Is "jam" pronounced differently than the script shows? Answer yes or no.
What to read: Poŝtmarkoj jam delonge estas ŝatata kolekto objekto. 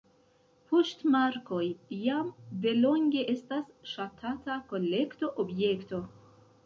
no